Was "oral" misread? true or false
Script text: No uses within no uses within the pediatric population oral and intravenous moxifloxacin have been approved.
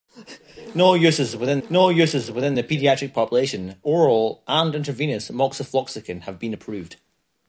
false